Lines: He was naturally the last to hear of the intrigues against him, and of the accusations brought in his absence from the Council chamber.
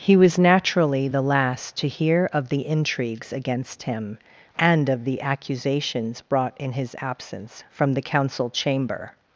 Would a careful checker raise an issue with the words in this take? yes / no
no